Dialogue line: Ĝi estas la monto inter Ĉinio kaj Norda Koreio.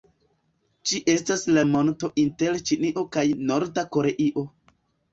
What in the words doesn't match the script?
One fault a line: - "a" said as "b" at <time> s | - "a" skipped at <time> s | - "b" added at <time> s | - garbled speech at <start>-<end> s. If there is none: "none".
none